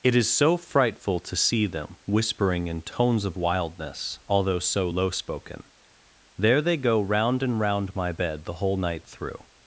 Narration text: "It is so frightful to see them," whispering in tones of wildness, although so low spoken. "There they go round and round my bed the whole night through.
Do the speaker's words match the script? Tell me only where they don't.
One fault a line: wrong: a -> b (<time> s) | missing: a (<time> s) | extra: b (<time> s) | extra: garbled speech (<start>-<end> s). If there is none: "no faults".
no faults